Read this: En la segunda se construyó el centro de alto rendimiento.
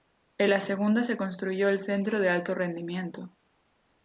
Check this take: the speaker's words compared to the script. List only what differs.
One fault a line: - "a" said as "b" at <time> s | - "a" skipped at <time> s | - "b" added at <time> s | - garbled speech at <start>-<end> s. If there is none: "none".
none